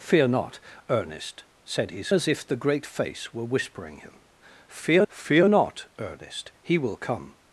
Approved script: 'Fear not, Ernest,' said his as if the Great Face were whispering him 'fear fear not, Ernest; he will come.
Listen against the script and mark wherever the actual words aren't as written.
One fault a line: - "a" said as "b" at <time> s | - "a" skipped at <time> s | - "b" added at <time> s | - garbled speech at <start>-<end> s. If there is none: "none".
none